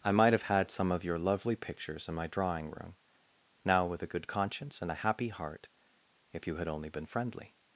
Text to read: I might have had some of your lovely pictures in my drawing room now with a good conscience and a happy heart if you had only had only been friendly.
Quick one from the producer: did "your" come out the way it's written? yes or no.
yes